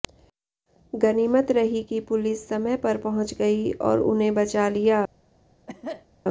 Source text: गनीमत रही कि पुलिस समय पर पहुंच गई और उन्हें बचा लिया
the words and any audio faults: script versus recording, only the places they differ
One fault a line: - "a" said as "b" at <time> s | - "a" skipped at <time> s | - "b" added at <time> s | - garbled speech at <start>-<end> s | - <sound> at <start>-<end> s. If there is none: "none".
- cough at 5.7-6.1 s